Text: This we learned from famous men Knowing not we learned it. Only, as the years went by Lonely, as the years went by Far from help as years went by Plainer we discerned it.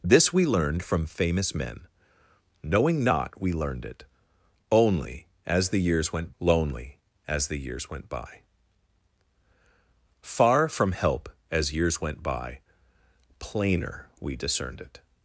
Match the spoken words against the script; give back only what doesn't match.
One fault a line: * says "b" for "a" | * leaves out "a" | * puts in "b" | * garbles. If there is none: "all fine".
* leaves out "by"